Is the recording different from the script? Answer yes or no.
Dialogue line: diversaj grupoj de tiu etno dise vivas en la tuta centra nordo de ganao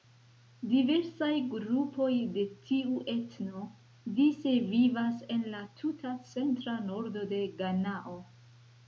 no